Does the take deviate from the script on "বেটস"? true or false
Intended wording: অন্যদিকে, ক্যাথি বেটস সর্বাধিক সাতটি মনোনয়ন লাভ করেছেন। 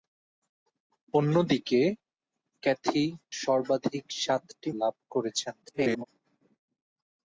true